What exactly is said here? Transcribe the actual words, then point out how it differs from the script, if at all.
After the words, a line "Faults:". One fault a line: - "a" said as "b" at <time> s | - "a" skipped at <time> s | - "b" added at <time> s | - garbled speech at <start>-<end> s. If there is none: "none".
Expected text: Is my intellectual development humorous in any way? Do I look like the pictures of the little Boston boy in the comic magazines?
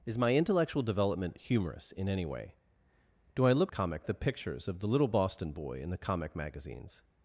Is my intellectual development humorous in any way? Do I look comic the pictures of the little Boston boy in the comic magazines?
Faults:
- "like" said as "comic" at 3.7 s